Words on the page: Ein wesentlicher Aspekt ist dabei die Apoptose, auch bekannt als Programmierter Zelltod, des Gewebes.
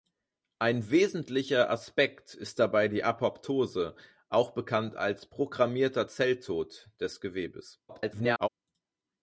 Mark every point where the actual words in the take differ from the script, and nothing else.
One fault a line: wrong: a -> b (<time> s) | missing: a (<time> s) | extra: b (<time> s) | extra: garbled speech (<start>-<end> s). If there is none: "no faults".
extra: garbled speech (7.9-8.5 s)